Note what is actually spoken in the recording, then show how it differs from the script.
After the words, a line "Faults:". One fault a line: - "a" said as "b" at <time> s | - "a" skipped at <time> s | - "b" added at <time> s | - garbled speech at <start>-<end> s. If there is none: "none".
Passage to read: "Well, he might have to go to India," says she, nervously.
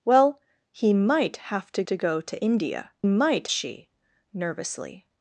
"Well, he might have to to go to India," might she, nervously.
Faults:
- "to" added at 1.9 s
- "says" said as "might" at 3.0 s